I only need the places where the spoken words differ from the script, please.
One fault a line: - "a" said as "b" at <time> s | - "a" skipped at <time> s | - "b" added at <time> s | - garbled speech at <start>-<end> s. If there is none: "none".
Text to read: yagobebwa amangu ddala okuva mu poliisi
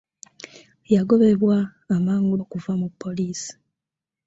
- "ddala" skipped at 2.4 s